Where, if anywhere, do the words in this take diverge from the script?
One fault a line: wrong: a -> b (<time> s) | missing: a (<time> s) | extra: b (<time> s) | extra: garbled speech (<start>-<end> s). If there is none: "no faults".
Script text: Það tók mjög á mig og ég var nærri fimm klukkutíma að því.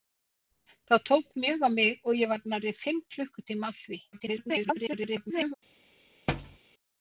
extra: garbled speech (4.1-5.5 s)